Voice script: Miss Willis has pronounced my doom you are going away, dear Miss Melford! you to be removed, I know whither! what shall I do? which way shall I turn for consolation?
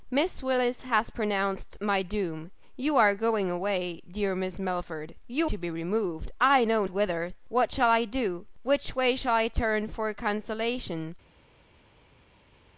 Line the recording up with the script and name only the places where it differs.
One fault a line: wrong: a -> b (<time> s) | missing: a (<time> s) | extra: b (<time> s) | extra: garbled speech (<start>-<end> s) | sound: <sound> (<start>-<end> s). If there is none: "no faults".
no faults